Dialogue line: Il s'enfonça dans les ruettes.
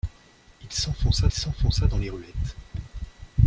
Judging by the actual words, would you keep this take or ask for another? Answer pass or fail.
fail